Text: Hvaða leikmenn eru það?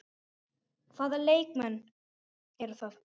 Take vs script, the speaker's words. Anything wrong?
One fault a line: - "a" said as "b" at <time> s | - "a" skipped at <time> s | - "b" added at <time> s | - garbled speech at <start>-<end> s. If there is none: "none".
none